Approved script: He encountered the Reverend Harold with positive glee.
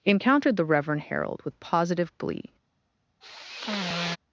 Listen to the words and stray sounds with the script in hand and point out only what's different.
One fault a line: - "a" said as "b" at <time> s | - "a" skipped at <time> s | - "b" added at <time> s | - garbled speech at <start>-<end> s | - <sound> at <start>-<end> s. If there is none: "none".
- "He" skipped at 0.1 s
- sigh at 3.2-4.2 s